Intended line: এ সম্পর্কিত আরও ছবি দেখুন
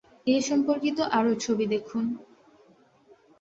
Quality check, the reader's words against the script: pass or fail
pass